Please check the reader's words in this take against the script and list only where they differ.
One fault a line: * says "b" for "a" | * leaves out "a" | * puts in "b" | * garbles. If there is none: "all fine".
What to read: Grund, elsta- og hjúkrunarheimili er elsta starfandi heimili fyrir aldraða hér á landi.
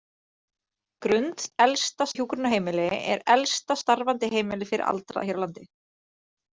all fine